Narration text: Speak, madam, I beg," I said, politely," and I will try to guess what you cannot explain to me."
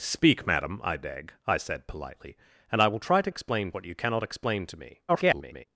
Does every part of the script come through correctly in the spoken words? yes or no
no